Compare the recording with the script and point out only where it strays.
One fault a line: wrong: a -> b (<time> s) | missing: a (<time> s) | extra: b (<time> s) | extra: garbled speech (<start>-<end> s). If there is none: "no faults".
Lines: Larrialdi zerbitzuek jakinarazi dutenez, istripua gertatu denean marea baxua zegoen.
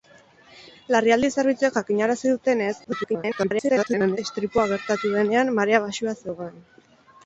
extra: garbled speech (2.8-4.2 s)